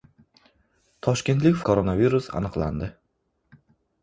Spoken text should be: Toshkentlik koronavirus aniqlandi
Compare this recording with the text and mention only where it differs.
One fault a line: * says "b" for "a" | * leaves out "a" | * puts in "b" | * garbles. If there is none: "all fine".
all fine